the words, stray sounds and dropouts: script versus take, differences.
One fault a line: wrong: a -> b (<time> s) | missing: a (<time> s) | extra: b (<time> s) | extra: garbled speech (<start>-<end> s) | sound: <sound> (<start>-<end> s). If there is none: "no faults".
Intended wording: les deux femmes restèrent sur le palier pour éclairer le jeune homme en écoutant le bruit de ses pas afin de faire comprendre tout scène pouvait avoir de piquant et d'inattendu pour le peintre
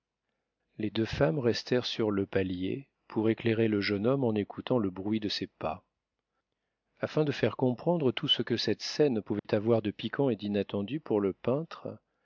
extra: ce que cette (8.3 s)
sound: dropout (9.4-9.4 s)